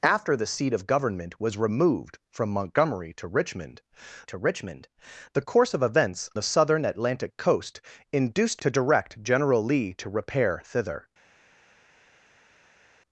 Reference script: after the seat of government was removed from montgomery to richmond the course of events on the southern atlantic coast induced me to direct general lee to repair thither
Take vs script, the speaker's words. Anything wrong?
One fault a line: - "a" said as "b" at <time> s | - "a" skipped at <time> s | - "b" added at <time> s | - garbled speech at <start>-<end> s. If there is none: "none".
- "to richmond" added at 4.3 s
- "on" skipped at 6.3 s
- "me" skipped at 8.6 s